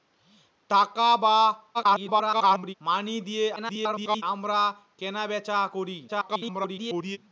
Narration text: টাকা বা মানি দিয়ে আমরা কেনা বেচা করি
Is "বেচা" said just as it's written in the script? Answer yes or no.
yes